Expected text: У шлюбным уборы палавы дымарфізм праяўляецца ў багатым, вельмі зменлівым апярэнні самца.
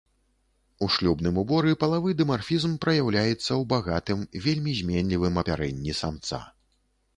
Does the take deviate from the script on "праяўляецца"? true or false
false